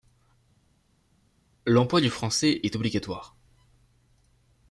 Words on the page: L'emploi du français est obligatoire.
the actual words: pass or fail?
pass